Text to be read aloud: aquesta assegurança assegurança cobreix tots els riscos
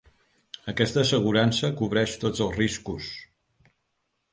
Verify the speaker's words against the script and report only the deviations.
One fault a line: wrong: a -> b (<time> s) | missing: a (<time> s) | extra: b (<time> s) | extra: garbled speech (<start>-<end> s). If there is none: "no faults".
missing: assegurança (1.7 s)